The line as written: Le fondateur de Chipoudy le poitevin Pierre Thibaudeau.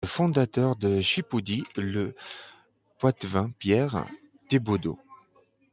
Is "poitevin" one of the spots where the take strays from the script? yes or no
no